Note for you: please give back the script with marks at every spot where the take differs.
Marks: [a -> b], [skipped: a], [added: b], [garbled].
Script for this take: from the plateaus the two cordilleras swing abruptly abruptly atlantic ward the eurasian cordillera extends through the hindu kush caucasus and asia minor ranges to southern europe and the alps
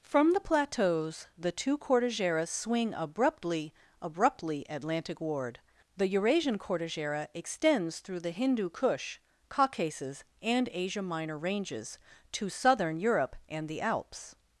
from the plateaus the two cordilleras swing abruptly abruptly atlantic ward the eurasian cordillera extends through the hindu kush caucasus and asia minor ranges to southern europe and the alps